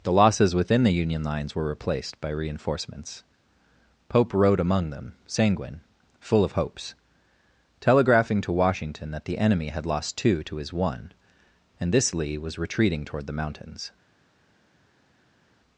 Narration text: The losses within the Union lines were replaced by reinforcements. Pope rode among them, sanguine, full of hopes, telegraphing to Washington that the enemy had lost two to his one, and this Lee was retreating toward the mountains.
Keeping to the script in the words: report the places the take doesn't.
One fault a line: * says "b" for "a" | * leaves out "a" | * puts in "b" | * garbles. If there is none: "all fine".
all fine